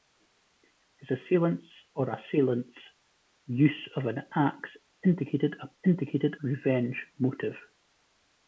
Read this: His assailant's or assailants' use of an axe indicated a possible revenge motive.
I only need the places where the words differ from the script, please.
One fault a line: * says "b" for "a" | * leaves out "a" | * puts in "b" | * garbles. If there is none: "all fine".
* says "indicated" for "possible"